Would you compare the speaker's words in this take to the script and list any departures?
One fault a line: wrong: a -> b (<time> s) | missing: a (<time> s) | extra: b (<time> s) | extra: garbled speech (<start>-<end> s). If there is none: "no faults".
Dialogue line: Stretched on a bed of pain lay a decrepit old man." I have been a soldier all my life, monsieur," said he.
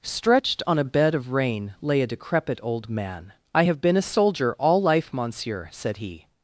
wrong: pain -> rain (1.3 s)
missing: my (4.8 s)